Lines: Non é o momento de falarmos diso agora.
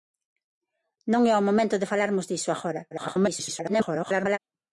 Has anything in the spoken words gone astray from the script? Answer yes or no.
yes